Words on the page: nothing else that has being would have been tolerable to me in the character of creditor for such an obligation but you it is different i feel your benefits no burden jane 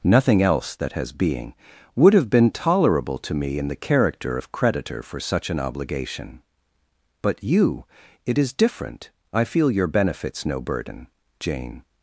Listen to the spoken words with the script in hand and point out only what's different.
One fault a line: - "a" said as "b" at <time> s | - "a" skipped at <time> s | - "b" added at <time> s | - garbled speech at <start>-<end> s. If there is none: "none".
none